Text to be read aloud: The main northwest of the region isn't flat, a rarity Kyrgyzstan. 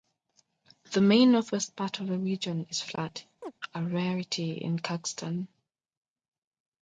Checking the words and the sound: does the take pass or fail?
fail